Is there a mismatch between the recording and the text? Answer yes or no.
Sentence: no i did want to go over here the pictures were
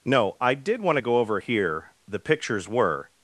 no